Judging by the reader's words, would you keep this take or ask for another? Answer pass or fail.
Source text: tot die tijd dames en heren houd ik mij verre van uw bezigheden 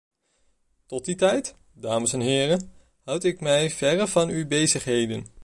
pass